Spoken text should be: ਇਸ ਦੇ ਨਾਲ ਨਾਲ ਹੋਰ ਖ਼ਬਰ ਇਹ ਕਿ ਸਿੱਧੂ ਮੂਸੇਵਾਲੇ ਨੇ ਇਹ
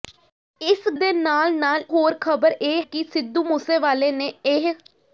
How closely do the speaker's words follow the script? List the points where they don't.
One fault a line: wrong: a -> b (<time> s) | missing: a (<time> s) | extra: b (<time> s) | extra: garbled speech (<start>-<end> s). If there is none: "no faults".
no faults